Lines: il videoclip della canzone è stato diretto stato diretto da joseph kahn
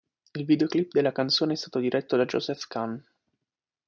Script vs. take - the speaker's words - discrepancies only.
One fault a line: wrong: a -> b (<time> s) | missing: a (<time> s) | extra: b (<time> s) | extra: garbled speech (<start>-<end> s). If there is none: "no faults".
missing: stato diretto (2.2 s)